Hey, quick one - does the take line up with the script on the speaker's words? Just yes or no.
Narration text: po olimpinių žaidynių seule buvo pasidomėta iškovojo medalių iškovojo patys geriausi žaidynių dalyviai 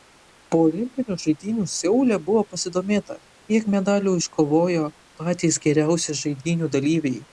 no